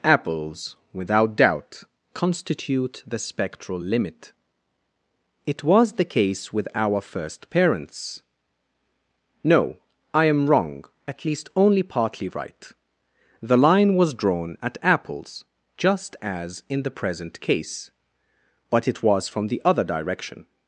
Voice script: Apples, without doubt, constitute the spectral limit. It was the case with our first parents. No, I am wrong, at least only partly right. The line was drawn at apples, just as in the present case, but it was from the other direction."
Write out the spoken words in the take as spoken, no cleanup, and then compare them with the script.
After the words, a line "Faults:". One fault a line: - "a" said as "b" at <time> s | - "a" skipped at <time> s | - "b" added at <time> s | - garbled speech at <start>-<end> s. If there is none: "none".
Apples, without doubt, constitute the spectral limit. It was the case with our first parents. No, I am wrong, at least only partly right. The line was drawn at apples, just as in the present case, but it was from the other direction."
Faults:
none